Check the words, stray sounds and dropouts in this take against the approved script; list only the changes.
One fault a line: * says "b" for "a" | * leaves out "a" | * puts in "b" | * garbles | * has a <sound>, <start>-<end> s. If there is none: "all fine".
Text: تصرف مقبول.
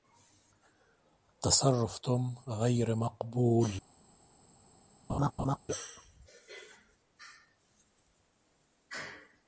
* puts in "توم غير"
* has a laugh, 5.1-5.6 s